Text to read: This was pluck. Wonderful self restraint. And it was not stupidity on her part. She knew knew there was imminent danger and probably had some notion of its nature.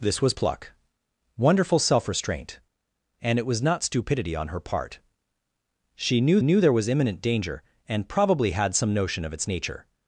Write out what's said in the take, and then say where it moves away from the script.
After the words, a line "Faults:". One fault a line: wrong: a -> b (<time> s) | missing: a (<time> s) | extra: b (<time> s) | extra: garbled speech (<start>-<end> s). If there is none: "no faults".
This was pluck. Wonderful self restraint. And it was not stupidity on her part. She knew knew there was imminent danger and probably had some notion of its nature.
Faults:
no faults